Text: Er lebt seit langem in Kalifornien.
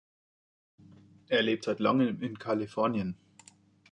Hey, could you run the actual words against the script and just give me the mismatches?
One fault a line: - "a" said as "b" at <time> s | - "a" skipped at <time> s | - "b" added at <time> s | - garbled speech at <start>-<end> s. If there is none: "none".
none